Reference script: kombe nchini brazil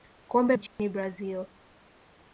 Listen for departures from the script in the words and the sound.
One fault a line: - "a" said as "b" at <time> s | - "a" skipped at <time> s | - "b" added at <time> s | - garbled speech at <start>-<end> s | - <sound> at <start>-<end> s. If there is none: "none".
- dropout at 0.7-0.8 s